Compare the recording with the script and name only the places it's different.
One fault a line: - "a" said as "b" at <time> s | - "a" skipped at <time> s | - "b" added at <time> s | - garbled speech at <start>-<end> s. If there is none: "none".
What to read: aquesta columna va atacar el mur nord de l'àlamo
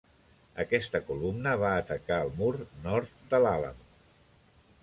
none